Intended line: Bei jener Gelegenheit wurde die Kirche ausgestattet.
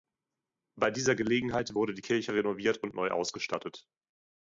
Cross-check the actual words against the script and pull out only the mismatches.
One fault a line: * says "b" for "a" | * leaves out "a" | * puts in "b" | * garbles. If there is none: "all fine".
* says "dieser" for "jener"
* puts in "renoviert und neu"